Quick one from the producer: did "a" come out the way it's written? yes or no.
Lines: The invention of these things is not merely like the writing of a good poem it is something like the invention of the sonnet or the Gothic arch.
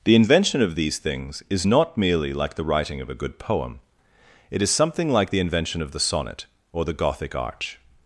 yes